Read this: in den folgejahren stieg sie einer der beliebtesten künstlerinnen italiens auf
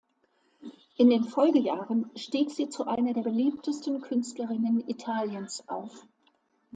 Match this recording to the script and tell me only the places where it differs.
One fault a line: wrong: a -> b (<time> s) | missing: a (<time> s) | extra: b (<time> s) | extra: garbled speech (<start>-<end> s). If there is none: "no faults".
extra: zu (2.7 s)